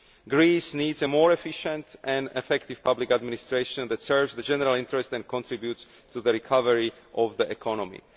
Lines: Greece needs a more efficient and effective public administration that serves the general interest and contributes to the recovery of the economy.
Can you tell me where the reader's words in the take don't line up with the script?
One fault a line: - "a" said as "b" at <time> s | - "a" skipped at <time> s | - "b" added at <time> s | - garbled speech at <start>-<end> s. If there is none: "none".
none